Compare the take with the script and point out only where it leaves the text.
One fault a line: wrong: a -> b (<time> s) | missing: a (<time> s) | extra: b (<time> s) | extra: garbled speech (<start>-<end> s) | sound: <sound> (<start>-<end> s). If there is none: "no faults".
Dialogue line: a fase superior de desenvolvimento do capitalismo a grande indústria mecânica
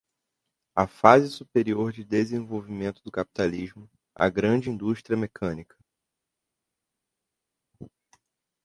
no faults